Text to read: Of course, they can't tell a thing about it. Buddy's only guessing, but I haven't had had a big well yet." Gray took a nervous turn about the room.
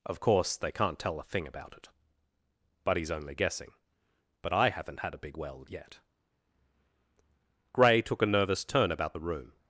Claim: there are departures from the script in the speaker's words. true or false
true